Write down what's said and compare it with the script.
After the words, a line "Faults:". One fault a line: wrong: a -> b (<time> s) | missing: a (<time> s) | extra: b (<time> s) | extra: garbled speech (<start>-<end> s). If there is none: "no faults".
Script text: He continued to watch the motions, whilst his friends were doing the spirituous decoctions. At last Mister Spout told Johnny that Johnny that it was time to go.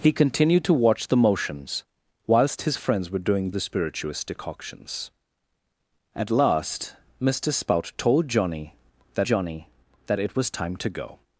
He continued to watch the motions, whilst his friends were doing the spirituous decoctions. At last Mister Spout told Johnny that Johnny that it was time to go.
Faults:
no faults